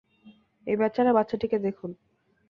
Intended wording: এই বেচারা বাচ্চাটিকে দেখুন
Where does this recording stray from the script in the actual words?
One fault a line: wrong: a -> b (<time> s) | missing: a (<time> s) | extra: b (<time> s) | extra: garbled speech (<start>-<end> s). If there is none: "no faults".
no faults